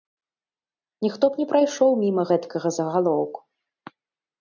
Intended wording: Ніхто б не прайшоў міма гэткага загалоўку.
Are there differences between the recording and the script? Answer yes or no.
no